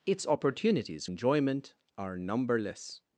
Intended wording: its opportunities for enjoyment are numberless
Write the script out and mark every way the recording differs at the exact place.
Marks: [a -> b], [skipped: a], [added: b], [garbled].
its opportunities [skipped: for] enjoyment are numberless